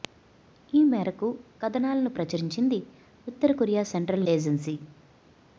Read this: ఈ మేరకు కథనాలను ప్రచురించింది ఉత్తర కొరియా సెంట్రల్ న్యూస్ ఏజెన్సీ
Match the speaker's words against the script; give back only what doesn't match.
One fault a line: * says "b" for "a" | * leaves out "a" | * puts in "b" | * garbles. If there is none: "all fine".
* leaves out "న్యూస్"